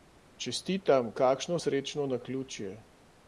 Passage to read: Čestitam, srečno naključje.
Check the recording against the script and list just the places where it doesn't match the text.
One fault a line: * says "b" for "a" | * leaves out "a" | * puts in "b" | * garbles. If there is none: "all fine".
* puts in "kakšno"